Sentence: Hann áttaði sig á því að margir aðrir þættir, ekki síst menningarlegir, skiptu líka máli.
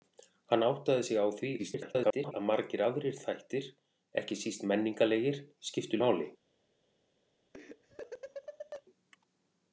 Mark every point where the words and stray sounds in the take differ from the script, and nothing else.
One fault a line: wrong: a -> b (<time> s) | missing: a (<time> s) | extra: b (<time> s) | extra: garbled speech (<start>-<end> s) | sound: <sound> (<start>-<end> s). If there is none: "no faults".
extra: garbled speech (1.6-2.3 s)
missing: líka (6.0 s)
sound: laugh (7.5-8.8 s)